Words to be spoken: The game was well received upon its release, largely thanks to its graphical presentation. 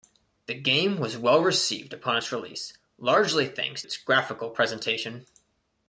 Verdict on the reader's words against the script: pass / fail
fail